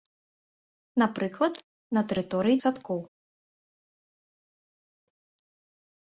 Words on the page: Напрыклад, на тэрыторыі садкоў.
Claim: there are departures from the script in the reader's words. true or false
false